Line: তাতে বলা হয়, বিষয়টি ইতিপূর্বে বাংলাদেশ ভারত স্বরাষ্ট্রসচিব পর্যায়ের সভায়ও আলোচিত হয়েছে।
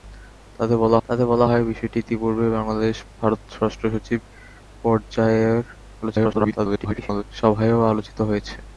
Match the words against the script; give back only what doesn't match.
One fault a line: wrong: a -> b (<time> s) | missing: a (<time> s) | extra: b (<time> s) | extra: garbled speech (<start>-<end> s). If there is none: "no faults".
extra: তাতে বলা (1.0 s)
extra: garbled speech (6.0-7.2 s)